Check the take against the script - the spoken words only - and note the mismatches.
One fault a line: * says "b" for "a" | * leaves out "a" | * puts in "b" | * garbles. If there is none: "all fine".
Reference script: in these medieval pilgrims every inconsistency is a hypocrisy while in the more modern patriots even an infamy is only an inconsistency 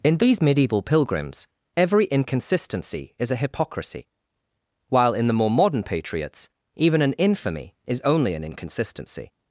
all fine